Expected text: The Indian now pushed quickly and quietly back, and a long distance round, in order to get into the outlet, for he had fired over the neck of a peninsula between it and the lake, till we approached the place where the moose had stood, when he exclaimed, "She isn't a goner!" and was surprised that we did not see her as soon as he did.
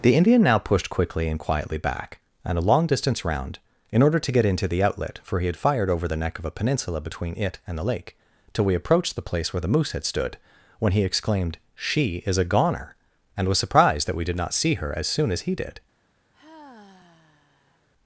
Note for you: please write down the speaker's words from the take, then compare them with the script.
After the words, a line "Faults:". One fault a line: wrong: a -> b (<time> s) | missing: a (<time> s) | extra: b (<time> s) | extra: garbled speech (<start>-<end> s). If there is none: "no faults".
The Indian now pushed quickly and quietly back, and a long distance round, in order to get into the outlet, for he had fired over the neck of a peninsula between it and the lake, till we approached the place where the moose had stood, when he exclaimed, "She is a goner!" and was surprised that we did not see her as soon as he did.
Faults:
wrong: isn't -> is (12.2 s)